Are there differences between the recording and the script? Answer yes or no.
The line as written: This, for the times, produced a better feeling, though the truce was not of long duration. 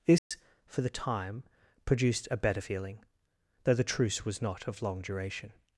yes